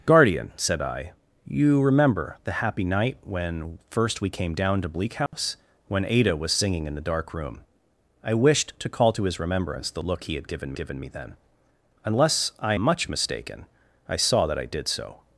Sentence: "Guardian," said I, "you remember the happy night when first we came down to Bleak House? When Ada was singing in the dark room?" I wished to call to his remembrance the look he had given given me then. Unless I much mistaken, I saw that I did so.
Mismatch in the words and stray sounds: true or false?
true